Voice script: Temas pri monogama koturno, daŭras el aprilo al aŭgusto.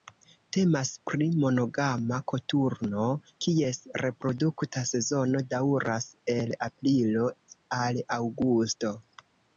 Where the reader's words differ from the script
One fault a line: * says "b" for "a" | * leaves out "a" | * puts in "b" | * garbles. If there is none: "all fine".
* puts in "kies reprodukta sezono"